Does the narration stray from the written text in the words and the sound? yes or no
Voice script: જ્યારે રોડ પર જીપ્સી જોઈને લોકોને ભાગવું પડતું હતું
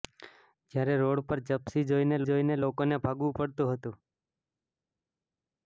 yes